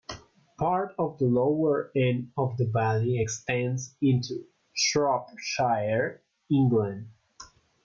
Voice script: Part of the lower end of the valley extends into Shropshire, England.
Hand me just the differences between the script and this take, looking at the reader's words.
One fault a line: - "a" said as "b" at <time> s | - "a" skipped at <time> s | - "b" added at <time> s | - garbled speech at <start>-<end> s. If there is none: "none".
none